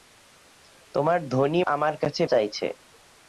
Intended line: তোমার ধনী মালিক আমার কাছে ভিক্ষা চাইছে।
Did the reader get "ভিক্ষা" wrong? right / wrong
wrong